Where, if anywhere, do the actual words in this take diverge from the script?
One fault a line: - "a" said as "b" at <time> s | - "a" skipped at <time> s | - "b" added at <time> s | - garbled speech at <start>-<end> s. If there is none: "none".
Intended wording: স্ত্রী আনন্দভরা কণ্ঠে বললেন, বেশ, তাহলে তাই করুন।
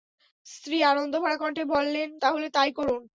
- "বেশ" skipped at 2.1 s